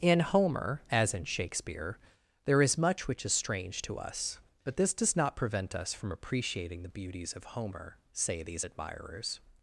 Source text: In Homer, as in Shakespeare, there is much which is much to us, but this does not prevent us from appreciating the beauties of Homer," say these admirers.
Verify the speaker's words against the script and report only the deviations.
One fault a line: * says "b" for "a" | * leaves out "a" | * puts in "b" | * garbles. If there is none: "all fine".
* says "strange" for "much"